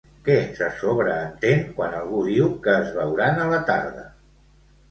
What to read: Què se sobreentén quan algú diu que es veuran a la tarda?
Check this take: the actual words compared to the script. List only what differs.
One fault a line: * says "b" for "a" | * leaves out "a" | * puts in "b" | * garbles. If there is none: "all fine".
all fine